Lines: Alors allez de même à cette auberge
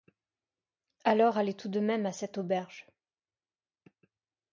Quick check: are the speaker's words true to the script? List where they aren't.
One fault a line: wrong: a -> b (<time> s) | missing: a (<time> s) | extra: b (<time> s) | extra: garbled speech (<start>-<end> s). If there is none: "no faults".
extra: tout (1.5 s)